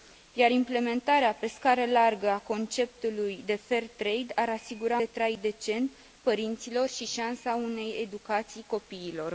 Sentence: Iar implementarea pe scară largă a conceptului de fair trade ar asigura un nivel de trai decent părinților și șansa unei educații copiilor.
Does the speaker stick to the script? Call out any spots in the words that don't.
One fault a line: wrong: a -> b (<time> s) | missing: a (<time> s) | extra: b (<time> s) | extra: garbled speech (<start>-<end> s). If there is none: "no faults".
missing: un nivel (5.0 s)